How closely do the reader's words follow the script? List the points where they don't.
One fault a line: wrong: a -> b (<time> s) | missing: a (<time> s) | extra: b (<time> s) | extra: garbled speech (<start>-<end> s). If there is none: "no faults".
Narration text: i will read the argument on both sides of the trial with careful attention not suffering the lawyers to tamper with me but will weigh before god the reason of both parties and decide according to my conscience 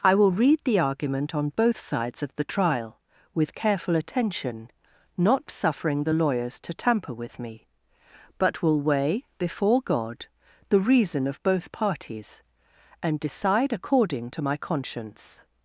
no faults